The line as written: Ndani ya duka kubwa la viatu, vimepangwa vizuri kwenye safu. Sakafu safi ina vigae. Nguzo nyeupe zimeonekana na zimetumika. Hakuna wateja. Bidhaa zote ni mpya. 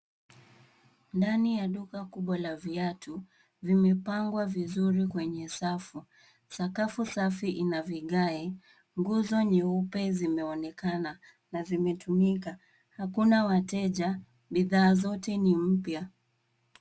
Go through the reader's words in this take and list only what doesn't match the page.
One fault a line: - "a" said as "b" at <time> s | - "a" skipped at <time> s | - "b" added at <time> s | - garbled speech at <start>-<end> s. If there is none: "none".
none